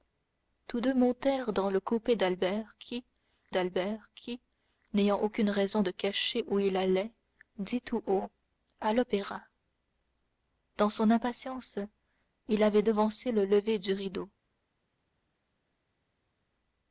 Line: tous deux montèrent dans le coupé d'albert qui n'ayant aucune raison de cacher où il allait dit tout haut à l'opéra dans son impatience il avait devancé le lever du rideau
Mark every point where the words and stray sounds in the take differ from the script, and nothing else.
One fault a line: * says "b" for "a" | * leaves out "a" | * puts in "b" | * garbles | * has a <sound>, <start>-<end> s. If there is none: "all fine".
* puts in "d'albert qui"